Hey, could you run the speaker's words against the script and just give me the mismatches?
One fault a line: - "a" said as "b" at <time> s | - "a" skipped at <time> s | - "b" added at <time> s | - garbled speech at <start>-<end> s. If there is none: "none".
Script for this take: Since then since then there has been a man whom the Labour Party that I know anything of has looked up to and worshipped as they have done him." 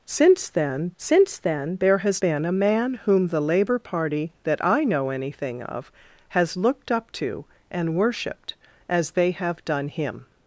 none